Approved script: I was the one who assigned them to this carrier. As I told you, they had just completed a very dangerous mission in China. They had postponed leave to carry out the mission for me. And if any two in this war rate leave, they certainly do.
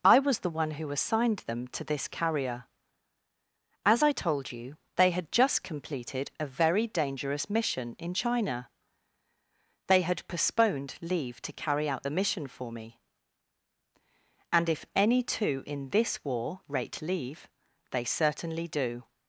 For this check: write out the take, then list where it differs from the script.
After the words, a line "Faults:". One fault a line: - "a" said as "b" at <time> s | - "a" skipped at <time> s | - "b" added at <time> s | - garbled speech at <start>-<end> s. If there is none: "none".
I was the one who assigned them to this carrier. As I told you, they had just completed a very dangerous mission in China. They had postponed leave to carry out the mission for me. And if any two in this war rate leave, they certainly do.
Faults:
none